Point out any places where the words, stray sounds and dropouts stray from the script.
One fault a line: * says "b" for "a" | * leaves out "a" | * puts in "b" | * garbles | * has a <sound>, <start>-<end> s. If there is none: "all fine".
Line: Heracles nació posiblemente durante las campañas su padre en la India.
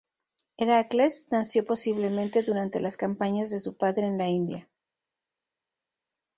* puts in "de"